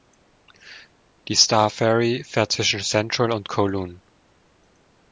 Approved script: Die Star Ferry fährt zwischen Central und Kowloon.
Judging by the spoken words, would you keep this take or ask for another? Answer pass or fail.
pass